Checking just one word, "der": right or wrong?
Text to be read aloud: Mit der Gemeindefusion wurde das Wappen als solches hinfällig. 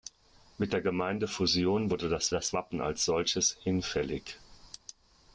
right